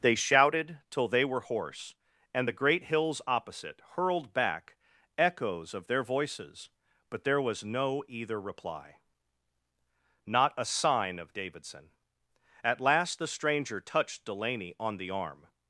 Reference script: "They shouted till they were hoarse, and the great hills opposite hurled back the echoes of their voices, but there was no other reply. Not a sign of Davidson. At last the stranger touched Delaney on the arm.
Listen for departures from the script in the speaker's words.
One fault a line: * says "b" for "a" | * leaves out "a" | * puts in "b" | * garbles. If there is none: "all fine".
* leaves out "the"
* says "either" for "other"